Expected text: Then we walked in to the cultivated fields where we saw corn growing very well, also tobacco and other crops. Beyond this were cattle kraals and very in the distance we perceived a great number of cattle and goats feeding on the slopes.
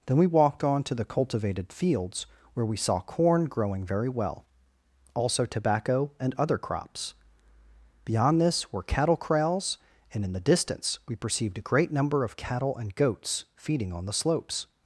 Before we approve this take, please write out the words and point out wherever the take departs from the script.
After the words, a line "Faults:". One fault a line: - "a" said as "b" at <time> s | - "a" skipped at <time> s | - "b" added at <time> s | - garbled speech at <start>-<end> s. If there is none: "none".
Then we walked on to the cultivated fields where we saw corn growing very well, also tobacco and other crops. Beyond this were cattle kraals and in the distance we perceived a great number of cattle and goats feeding on the slopes.
Faults:
- "in" said as "on" at 0.6 s
- "very" skipped at 10.2 s